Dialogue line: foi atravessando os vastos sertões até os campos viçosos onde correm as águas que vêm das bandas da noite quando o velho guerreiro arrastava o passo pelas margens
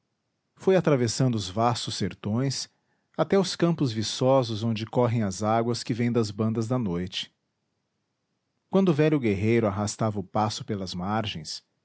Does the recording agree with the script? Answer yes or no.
yes